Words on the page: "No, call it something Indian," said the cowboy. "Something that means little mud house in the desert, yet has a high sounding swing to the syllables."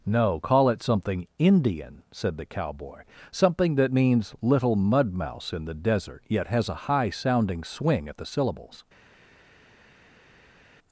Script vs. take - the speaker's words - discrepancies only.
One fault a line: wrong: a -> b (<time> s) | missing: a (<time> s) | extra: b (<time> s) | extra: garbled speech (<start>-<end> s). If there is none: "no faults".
wrong: house -> mouse (5.1 s)
wrong: to -> at (8.1 s)